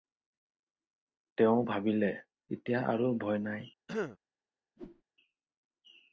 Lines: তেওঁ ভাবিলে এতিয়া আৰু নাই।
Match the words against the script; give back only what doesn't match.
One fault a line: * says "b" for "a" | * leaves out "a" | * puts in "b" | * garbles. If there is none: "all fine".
* puts in "ভয়"